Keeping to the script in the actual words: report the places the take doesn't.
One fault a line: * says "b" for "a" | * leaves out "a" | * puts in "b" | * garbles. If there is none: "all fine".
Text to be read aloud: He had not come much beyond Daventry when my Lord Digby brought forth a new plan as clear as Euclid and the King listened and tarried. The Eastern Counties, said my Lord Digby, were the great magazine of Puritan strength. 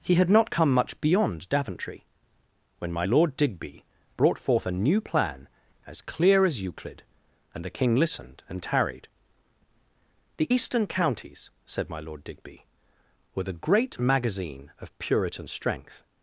all fine